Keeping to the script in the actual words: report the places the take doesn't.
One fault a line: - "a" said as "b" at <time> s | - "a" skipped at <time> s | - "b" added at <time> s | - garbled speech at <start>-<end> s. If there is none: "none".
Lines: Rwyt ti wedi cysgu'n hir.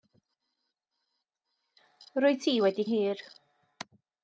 - "cysgu'n" skipped at 2.9 s